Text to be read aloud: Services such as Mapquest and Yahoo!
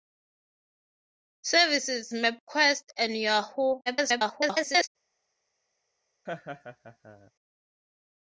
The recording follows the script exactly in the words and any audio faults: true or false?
false